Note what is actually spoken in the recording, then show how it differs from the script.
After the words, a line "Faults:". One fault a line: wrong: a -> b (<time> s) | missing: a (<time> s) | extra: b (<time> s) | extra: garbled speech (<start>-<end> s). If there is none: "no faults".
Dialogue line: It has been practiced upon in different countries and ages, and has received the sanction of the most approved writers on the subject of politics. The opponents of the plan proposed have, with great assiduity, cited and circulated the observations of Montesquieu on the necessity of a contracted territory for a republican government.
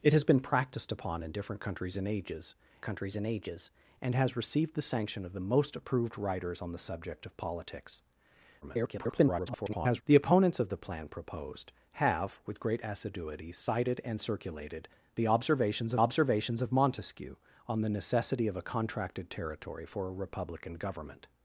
It has been practiced upon in different countries and ages countries and ages, and has received the sanction of the most approved writers on the subject of politics. [garbled] The opponents of the plan proposed have, with great assiduity, cited and circulated the observations observations of Montesquieu on the necessity of a contracted territory for a republican government.
Faults:
extra: countries (2.8 s)
extra: ages and (3.3 s)
extra: garbled speech (8.6-10.0 s)
extra: observations (16.0 s)